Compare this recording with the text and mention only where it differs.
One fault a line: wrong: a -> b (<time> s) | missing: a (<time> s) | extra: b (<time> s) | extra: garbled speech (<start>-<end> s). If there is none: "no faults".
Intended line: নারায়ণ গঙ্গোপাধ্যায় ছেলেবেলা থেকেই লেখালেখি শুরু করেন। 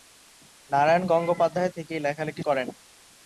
missing: ছেলেবেলা (1.7 s)
missing: শুরু (2.4 s)